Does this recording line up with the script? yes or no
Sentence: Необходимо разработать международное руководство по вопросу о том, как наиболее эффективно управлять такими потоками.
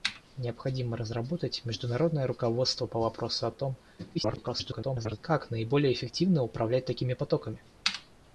no